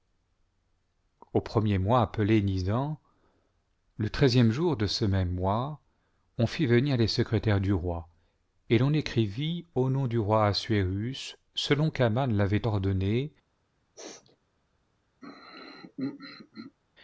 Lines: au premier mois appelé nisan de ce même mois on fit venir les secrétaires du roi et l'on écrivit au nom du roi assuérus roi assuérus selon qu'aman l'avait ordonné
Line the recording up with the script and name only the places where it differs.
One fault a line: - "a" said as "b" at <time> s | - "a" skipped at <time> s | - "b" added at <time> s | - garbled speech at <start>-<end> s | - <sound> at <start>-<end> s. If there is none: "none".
- "le treizième jour" added at 4.0 s
- "roi assuérus" skipped at 11.4 s
- sneeze at 14.0-14.4 s
- throat clearing at 15.2-16.8 s